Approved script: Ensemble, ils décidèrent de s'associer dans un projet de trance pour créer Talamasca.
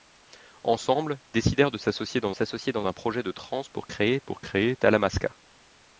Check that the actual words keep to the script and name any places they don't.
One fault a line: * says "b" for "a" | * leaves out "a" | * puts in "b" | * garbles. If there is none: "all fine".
* leaves out "ils"
* puts in "s'associer dans"
* puts in "pour créer"